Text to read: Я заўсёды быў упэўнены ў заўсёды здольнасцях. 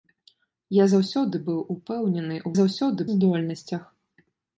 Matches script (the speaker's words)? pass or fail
pass